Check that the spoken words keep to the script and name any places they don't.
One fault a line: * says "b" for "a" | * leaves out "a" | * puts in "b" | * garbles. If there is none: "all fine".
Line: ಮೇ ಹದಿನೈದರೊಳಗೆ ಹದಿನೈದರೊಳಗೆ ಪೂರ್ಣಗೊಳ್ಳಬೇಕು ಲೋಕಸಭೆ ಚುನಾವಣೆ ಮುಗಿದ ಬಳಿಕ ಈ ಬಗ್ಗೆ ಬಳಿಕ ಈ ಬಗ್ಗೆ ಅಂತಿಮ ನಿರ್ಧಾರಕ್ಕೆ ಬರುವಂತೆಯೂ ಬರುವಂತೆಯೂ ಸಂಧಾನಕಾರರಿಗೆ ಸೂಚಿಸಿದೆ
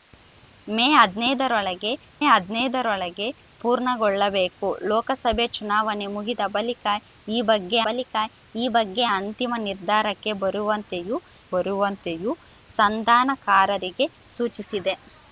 all fine